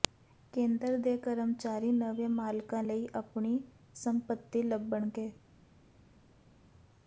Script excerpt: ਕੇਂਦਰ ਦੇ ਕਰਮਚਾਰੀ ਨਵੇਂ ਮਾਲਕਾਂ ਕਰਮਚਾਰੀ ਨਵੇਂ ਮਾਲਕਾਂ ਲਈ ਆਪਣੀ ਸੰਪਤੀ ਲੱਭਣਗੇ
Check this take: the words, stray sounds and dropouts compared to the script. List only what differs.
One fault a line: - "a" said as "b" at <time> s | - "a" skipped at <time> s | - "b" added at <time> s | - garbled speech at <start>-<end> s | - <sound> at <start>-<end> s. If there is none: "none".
- "ਕਰਮਚਾਰੀ ਨਵੇਂ ਮਾਲਕਾਂ" skipped at 2.8 s